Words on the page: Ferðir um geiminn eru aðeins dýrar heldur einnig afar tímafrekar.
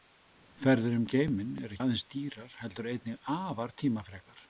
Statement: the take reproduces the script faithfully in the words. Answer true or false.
true